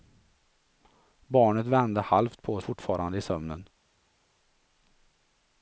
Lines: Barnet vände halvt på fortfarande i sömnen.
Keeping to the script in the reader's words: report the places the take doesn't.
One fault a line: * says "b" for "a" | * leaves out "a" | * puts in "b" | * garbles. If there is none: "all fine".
all fine